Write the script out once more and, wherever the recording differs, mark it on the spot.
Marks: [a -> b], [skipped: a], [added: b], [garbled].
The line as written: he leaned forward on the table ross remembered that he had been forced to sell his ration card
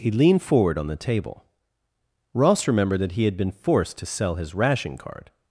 he leaned forward on the table ross remembered that he had been forced to sell his ration card